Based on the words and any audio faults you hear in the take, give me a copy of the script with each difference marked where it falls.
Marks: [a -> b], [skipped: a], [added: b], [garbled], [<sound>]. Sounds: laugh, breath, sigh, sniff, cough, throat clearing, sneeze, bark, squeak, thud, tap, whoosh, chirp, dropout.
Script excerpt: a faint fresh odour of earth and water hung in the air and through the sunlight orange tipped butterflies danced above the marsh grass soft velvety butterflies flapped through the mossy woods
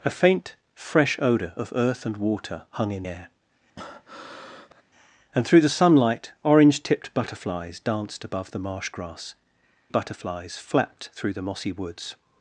a faint fresh odour of earth and water hung in [skipped: the] air [breath] and through the sunlight orange tipped butterflies danced above the marsh grass [skipped: soft velvety] butterflies flapped through the mossy woods